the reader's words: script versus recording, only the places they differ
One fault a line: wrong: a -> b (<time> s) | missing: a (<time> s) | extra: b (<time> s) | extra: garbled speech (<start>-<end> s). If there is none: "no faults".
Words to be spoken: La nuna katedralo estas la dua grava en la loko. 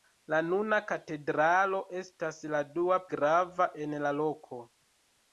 no faults